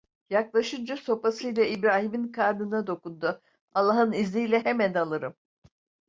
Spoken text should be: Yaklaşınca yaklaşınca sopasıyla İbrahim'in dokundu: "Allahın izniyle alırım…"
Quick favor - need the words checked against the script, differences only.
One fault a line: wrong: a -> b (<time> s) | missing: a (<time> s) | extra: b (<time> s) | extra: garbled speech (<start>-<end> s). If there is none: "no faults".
missing: yaklaşınca (1.0 s)
extra: karnına (2.3 s)
extra: hemen (4.6 s)